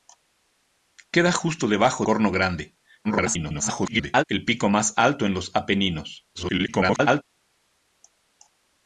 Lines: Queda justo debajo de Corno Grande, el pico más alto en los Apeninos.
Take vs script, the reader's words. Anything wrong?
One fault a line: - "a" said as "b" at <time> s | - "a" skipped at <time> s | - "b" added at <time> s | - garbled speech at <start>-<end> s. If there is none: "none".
- "de" skipped at 2.1 s
- garbled speech at 3.0-4.2 s
- garbled speech at 6.3-7.2 s